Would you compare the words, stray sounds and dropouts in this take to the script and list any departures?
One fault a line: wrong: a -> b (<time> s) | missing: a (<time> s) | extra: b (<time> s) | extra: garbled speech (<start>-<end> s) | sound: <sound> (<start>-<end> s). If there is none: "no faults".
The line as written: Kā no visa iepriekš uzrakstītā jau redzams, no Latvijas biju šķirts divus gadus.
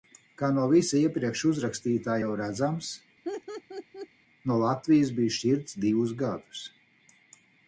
sound: laugh (3.2-4.1 s)